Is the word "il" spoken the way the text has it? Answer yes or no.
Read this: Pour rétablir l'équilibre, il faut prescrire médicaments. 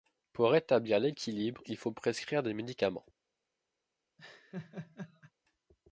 yes